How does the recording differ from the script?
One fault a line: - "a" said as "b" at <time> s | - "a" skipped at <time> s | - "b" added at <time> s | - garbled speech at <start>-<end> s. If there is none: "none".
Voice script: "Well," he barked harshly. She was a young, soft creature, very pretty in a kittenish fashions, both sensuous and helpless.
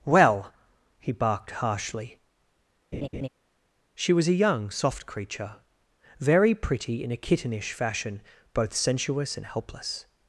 - "fashions" said as "fashion" at 7.7 s